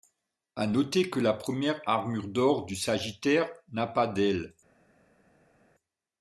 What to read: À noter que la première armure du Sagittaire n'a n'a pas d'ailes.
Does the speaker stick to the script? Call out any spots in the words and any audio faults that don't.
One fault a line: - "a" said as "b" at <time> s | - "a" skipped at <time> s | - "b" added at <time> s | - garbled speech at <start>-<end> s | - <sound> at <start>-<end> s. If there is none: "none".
- "d'or" added at 2.3 s
- "n'a" skipped at 3.9 s